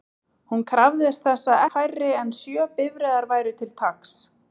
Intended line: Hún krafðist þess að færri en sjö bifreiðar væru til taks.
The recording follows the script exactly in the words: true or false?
true